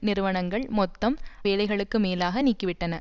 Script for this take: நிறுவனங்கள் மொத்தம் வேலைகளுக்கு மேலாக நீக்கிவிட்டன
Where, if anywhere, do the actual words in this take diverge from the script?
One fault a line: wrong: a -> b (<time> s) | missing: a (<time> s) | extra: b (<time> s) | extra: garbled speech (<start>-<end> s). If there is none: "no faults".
no faults